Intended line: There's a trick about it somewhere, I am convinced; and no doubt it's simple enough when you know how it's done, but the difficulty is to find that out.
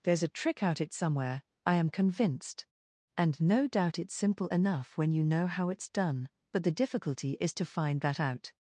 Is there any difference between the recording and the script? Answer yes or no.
yes